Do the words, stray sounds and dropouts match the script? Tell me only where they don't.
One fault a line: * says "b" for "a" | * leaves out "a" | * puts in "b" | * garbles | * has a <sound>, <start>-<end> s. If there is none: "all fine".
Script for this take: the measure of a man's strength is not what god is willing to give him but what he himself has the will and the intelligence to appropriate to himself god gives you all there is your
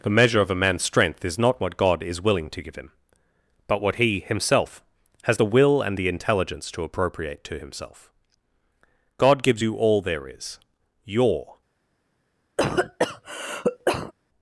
* has a cough, 12.6-14.1 s